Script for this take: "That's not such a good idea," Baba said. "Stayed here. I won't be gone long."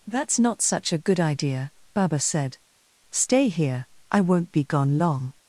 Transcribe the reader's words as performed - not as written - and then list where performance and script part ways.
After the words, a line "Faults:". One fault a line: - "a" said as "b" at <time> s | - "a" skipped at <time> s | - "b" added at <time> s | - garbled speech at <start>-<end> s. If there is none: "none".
"That's not such a good idea," Baba said. "Stay here. I won't be gone long."
Faults:
- "Stayed" said as "Stay" at 3.1 s